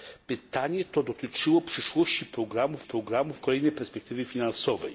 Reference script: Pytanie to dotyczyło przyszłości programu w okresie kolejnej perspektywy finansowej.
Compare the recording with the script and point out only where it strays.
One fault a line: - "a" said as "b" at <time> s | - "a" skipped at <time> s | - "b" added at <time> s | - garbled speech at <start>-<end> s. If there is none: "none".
- "okresie" said as "programu" at 2.8 s